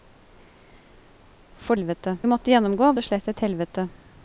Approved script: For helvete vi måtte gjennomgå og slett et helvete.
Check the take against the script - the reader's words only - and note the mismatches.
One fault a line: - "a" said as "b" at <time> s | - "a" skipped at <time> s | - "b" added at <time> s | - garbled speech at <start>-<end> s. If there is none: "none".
none